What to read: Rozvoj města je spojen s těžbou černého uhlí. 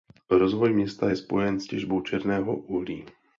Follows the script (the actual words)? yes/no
yes